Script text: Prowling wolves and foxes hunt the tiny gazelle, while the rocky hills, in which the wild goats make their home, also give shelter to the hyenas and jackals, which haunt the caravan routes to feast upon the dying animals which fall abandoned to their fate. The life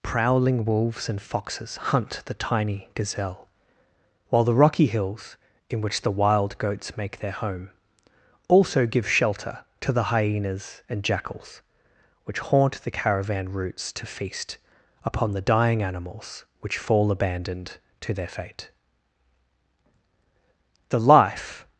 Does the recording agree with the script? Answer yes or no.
yes